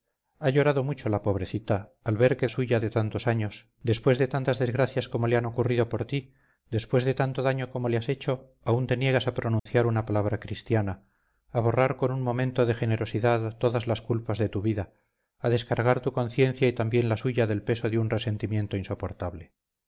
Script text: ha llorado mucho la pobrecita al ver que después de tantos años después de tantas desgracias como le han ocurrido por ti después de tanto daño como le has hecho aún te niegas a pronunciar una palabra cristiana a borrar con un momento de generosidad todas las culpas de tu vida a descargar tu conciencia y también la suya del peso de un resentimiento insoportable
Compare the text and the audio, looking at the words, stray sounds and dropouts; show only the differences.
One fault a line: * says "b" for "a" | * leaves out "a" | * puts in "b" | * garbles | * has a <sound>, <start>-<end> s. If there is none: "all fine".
* says "suya" for "después"
* has a dropout, 9.6-9.7 s